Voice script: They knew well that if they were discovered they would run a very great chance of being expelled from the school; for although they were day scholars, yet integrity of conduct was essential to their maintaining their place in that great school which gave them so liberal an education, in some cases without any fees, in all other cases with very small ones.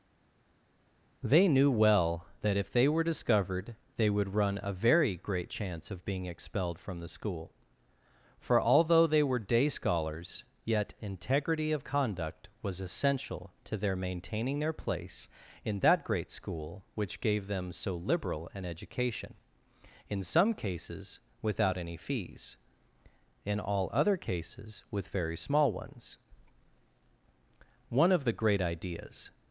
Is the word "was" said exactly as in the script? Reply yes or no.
yes